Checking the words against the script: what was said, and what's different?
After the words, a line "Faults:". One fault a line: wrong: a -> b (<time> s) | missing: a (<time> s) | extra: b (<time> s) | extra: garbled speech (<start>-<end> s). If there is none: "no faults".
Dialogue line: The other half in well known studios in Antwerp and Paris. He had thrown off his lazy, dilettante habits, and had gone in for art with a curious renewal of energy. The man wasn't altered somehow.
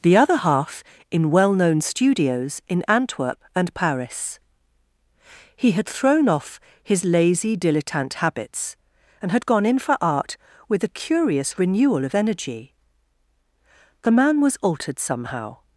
The other half in well known studios in Antwerp and Paris. He had thrown off his lazy, dilettante habits, and had gone in for art with a curious renewal of energy. The man was altered somehow.
Faults:
wrong: wasn't -> was (14.4 s)